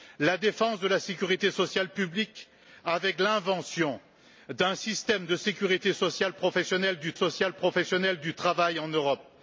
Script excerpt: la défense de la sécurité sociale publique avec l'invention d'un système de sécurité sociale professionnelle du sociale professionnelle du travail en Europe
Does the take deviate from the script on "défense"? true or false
false